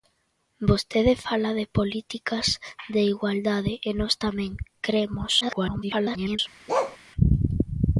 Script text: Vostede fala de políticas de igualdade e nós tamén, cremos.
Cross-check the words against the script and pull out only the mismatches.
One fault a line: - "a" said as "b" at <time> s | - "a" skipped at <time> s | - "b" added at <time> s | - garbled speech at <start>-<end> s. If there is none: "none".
- garbled speech at 5.4-6.4 s